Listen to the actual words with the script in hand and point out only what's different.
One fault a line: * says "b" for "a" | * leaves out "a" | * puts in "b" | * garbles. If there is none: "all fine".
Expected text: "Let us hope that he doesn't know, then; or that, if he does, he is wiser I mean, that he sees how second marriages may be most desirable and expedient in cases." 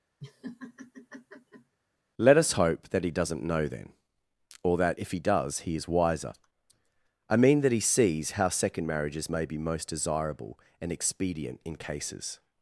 all fine